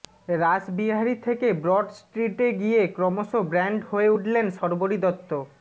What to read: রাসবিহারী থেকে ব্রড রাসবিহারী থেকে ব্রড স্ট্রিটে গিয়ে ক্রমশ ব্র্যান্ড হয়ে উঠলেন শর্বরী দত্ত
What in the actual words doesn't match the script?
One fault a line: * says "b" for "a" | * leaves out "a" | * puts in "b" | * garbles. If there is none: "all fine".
* leaves out "রাসবিহারী থেকে ব্রড"